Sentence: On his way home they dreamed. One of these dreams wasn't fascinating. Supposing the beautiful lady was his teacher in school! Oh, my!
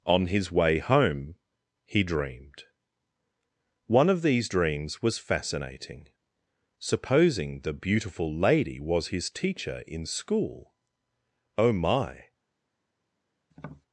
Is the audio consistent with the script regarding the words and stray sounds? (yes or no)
no